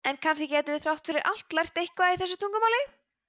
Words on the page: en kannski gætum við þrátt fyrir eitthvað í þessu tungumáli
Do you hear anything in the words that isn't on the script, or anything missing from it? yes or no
yes